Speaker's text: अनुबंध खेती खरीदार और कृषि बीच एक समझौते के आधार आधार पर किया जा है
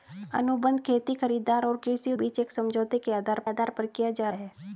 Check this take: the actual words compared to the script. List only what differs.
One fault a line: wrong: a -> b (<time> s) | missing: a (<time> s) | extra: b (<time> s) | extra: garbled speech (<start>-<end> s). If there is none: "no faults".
no faults